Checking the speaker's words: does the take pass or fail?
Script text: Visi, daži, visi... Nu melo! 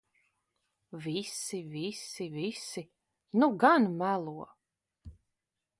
fail